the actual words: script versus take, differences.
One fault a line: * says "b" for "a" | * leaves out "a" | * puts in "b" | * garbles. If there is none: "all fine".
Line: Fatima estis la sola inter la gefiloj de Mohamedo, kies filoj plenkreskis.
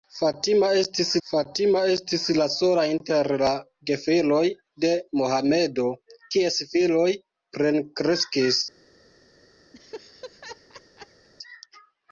* puts in "fatima estis"